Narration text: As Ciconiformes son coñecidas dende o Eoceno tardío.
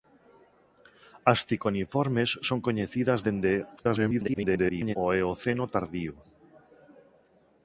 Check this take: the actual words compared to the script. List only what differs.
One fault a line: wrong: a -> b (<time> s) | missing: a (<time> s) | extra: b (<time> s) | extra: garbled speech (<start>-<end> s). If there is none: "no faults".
extra: garbled speech (3.8-5.0 s)